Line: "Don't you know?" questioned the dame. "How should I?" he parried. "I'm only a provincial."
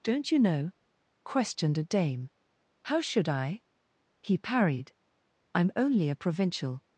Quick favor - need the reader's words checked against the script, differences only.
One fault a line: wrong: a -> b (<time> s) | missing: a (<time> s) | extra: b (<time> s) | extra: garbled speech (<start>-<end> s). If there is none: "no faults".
wrong: the -> a (1.8 s)